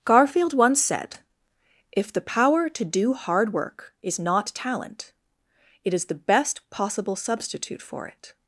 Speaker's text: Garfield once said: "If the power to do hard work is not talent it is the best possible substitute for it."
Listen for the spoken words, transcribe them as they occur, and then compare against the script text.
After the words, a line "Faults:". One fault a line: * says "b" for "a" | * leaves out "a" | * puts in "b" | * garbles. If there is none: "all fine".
Garfield once said: "If the power to do hard work is not talent it is the best possible substitute for it."
Faults:
all fine